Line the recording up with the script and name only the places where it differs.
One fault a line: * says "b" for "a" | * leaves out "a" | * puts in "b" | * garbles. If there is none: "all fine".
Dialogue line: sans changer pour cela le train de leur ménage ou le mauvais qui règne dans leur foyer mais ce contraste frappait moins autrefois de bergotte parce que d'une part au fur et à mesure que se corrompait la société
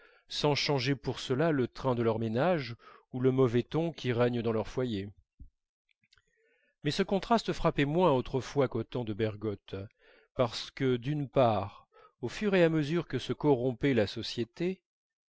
* puts in "ton"
* puts in "qu'au temps"